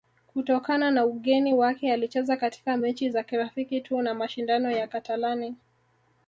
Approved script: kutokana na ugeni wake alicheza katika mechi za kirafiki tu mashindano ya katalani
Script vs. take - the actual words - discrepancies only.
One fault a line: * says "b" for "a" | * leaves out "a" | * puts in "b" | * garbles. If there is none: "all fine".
* puts in "na"